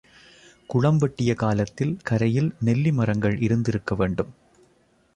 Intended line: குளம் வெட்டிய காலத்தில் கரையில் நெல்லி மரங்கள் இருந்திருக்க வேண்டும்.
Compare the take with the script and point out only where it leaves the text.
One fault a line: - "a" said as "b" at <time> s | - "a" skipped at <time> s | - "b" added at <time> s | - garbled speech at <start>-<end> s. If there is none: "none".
none